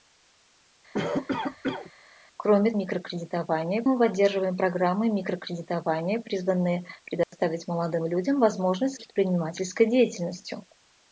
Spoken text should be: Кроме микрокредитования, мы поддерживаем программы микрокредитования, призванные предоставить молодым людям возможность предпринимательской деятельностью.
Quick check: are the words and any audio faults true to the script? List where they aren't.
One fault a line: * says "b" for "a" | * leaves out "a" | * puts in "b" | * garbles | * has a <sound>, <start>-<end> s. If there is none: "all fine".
* has a cough, 0.9-1.9 s
* has a dropout, 7.2-7.3 s